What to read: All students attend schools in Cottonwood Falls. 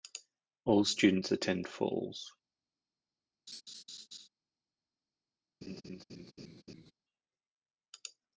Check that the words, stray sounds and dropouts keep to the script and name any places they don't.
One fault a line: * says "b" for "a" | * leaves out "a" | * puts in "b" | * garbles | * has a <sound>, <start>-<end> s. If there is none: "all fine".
* leaves out "schools in Cottonwood"
* has a laugh, 3.5-4.3 s
* has a laugh, 5.6-6.9 s